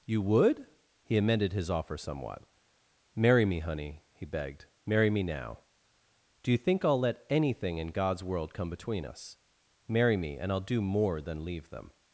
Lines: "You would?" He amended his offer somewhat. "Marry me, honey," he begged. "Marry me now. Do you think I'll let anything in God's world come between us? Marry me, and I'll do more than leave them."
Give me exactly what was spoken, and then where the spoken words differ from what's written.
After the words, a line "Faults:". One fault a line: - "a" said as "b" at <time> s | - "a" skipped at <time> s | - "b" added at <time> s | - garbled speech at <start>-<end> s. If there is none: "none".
"You would?" He amended his offer somewhat. "Marry me, honey," he begged. "Marry me now. Do you think I'll let anything in God's world come between us? Marry me, and I'll do more than leave them."
Faults:
none